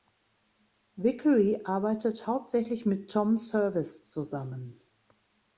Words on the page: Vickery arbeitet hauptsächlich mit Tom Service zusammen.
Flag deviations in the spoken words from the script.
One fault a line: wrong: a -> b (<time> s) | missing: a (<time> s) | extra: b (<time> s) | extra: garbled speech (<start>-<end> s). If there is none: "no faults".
no faults